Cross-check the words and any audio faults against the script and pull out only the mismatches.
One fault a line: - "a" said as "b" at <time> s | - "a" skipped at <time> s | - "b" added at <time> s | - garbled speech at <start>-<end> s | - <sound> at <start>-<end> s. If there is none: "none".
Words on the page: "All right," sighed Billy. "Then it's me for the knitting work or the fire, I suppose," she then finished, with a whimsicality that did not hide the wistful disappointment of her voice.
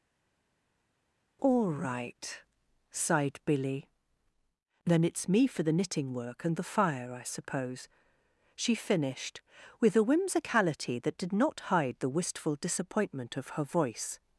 - "or" said as "and" at 6.4 s
- "then" skipped at 8.7 s